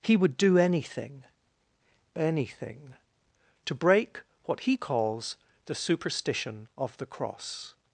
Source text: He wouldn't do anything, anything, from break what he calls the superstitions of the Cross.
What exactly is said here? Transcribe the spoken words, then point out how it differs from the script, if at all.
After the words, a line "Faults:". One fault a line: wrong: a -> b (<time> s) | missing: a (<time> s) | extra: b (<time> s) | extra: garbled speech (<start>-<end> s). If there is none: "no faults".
He would do anything, anything, to break what he calls the superstition of the Cross.
Faults:
wrong: wouldn't -> would (0.2 s)
wrong: from -> to (3.6 s)
wrong: superstitions -> superstition (5.7 s)